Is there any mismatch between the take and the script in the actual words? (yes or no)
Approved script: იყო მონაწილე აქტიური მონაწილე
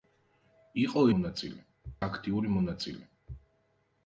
no